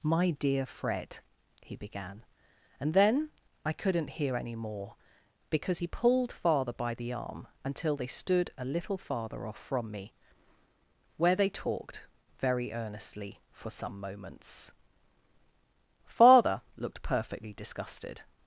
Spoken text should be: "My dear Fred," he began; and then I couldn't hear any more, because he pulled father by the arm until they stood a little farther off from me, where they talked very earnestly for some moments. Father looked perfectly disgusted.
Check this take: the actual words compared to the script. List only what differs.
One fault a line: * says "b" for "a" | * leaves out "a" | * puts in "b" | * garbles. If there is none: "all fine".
all fine